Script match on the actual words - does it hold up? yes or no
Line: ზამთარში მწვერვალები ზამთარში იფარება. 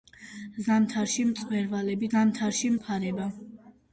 yes